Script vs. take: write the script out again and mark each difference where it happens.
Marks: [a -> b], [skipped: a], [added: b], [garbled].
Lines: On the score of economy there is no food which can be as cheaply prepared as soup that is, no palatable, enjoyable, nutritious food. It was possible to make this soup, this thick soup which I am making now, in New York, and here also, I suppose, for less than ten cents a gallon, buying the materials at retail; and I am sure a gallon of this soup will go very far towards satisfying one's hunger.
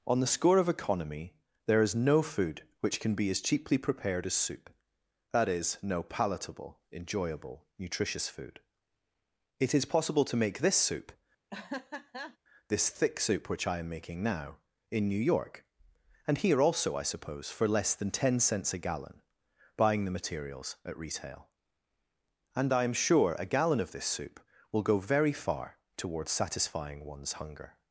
On the score of economy there is no food which can be as cheaply prepared as soup that is, no palatable, enjoyable, nutritious food. It [was -> is] possible to make this soup, this thick soup which I am making now, in New York, and here also, I suppose, for less than ten cents a gallon, buying the materials at retail; and I am sure a gallon of this soup will go very far towards satisfying one's hunger.